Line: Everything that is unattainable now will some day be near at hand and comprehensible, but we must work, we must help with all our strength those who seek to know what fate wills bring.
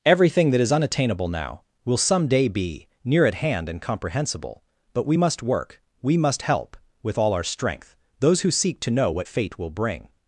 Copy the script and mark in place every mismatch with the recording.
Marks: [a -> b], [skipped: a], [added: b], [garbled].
Everything that is unattainable now will some day be near at hand and comprehensible, but we must work, we must help with all our strength those who seek to know what fate [wills -> will] bring.